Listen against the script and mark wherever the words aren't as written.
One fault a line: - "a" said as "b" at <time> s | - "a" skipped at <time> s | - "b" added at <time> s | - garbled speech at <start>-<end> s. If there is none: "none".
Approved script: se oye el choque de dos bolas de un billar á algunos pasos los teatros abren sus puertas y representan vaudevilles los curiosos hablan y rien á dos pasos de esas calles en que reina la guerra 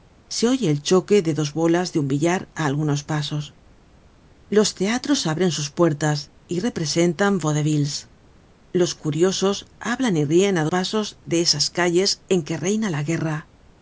- "dos" skipped at 10.6 s